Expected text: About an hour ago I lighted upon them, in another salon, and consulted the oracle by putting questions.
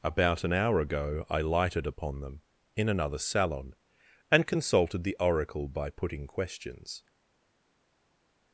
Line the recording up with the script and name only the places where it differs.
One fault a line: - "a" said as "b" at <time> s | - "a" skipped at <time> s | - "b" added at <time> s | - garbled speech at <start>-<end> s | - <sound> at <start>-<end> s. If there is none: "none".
none